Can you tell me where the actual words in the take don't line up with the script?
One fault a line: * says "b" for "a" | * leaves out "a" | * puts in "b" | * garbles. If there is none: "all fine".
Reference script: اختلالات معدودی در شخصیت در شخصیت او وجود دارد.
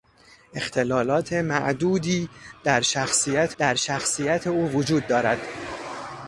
all fine